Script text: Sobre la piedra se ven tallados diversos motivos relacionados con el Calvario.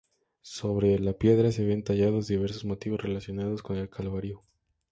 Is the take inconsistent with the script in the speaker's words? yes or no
no